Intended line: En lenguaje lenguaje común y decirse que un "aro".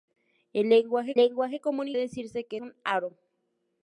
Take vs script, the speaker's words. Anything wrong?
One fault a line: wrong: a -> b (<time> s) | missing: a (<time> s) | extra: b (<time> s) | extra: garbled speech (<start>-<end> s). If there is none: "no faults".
no faults